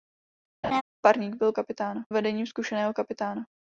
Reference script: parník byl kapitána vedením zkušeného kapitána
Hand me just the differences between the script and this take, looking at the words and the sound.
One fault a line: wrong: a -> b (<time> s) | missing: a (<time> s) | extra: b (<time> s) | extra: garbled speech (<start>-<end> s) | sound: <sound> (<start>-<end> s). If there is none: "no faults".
sound: laugh (0.6-0.8 s)